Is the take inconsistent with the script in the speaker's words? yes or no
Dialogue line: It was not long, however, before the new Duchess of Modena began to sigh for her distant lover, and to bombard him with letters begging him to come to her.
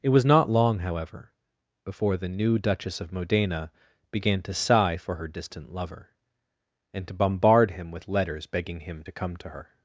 no